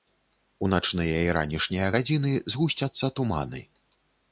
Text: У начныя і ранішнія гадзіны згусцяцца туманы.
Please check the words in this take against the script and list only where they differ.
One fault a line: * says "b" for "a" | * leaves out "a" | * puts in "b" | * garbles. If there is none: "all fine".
all fine